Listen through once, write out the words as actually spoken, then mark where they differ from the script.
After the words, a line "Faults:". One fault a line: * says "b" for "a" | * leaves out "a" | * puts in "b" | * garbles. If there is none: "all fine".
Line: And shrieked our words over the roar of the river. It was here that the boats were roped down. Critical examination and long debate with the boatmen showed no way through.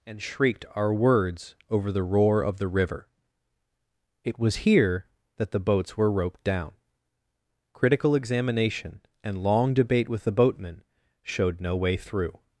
And shrieked our words over the roar of the river. It was here that the boats were roped down. Critical examination and long debate with the boatmen showed no way through.
Faults:
all fine